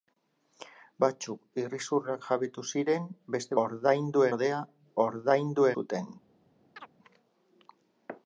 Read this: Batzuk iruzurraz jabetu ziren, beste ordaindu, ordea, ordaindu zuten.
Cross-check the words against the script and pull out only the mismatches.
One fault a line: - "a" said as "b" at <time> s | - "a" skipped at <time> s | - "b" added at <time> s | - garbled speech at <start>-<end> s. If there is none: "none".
none